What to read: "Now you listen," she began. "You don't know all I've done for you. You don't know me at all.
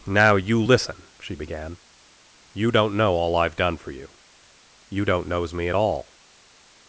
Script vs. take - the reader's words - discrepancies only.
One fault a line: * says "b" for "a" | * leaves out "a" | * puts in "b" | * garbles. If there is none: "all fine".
* says "knows" for "know"